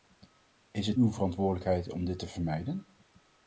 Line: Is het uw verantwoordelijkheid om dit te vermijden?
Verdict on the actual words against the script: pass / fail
pass